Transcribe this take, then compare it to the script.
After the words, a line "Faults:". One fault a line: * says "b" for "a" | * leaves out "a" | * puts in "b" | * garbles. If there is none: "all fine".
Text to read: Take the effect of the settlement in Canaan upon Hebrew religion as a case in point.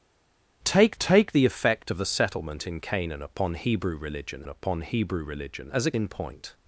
Take take the effect of the settlement in Canaan upon Hebrew religion upon Hebrew religion as a in point.
Faults:
* puts in "take"
* puts in "upon Hebrew religion"
* leaves out "case"